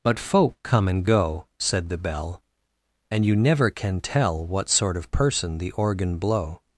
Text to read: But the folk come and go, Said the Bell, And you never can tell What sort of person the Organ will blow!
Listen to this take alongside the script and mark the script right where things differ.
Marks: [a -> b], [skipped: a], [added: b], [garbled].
But [skipped: the] folk come and go, Said the Bell, And you never can tell What sort of person the Organ [skipped: will] blow!